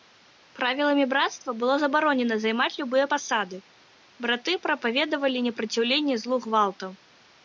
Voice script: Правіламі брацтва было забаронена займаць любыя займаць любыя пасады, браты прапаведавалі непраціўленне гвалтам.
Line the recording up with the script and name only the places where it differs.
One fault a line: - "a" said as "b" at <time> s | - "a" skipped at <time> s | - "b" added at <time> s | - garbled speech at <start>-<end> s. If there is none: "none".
- "займаць любыя" skipped at 3.0 s
- "злу" added at 6.2 s